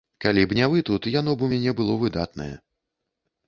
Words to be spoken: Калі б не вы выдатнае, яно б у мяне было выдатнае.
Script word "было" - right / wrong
right